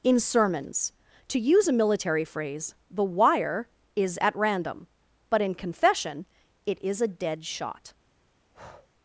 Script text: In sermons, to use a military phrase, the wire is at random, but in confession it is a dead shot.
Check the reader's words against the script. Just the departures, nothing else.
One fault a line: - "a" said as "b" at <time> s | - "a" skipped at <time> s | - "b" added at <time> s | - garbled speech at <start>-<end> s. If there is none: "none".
none